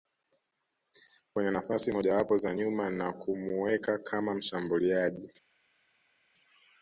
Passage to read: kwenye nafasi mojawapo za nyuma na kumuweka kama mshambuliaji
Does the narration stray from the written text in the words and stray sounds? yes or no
no